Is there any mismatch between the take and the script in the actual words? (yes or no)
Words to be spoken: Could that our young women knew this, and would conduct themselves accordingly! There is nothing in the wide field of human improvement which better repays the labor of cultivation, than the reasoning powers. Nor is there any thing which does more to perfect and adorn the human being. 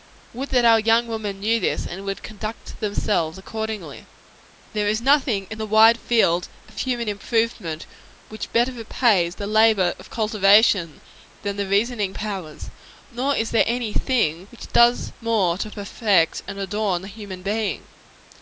yes